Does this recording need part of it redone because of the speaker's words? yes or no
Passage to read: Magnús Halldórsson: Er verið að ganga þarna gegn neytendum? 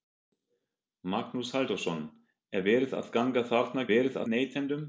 yes